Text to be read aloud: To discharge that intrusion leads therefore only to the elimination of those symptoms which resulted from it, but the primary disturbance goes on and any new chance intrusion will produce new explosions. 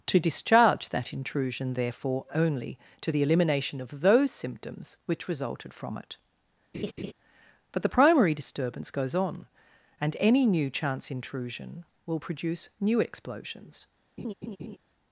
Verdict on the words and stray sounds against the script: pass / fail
fail